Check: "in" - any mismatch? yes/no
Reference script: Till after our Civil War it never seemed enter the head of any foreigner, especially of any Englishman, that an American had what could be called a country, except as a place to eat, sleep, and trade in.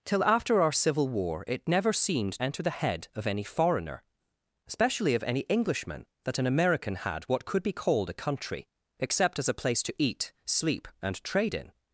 no